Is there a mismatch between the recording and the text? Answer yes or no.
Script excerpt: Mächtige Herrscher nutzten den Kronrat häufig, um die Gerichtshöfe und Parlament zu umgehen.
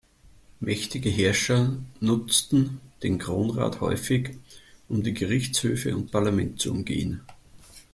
no